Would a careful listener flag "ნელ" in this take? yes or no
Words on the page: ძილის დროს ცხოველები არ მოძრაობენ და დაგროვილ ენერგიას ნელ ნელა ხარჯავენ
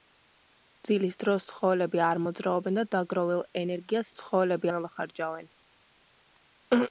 yes